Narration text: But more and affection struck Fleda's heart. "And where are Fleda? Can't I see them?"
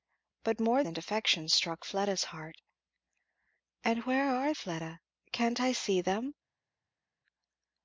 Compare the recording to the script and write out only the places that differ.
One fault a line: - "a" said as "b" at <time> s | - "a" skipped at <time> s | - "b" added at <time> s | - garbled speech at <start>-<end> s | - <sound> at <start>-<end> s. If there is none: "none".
none